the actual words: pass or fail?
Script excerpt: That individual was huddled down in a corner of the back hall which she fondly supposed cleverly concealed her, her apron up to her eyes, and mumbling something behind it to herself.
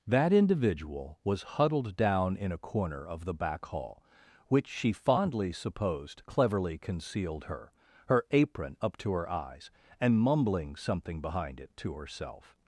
pass